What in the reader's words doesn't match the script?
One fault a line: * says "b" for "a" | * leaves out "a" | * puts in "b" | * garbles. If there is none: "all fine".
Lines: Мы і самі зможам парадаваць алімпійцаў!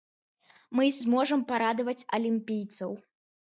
* leaves out "самі"